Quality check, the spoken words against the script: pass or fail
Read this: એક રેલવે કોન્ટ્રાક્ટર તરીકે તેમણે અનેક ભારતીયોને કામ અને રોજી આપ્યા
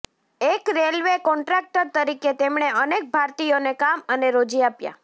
pass